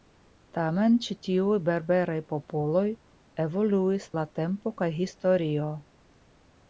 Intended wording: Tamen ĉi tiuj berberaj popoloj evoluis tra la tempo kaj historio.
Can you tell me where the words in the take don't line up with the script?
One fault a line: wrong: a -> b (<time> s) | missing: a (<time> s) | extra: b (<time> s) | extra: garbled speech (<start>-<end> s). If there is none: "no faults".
missing: tra (4.1 s)